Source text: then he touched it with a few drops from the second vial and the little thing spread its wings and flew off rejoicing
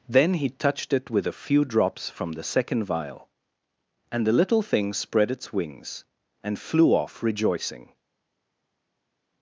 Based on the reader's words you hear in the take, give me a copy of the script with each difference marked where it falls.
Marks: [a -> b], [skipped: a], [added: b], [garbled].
then he touched it with a few drops from the second vial and the little thing spread its wings and flew off rejoicing